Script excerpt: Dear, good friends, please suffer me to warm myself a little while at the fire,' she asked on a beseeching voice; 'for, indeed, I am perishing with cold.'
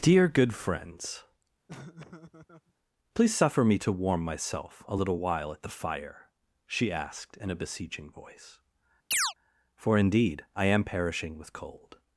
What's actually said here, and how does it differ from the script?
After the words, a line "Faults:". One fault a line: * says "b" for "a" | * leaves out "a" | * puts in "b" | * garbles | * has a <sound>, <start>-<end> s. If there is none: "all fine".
Dear, good friends, please suffer me to warm myself a little while at the fire,' she asked in a beseeching voice; 'for, indeed, I am perishing with cold.'
Faults:
* has a laugh, 1.7-2.7 s
* says "in" for "on"
* has a chirp, 9.1-9.3 s